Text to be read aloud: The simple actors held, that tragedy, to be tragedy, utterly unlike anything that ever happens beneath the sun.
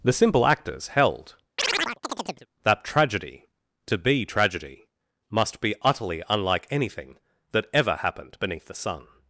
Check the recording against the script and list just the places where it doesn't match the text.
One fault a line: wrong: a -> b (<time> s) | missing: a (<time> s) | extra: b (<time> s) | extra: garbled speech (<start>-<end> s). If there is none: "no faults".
extra: must be (5.3 s)
wrong: happens -> happened (8.0 s)